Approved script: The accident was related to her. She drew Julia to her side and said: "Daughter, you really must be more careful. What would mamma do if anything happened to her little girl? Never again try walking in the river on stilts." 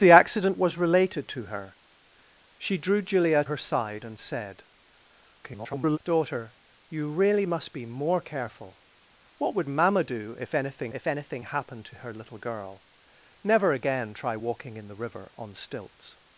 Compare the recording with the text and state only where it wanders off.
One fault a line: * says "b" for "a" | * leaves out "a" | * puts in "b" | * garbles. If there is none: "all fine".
* leaves out "to"
* garbles
* puts in "if anything"